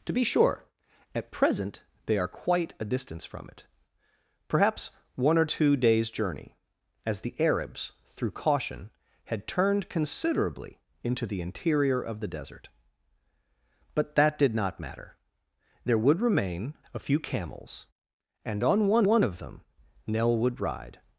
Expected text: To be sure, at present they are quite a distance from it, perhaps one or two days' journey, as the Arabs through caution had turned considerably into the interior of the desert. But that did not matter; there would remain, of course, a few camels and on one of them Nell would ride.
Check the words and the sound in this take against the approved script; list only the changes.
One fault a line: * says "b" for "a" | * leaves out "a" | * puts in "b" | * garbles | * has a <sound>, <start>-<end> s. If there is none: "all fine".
* leaves out "of course"
* puts in "one"